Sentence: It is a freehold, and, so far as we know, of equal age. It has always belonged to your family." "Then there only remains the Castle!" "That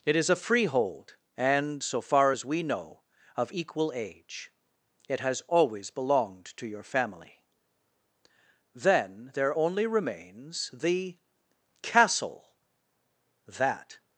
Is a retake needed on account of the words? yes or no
no